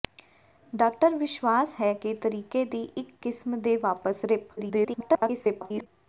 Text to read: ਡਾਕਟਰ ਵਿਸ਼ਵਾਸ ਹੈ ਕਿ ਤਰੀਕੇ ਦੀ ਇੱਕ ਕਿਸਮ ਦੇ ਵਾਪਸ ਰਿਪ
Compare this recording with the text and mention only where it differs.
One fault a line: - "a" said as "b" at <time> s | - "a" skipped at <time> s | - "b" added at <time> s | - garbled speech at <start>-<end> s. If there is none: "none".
- garbled speech at 4.6-5.9 s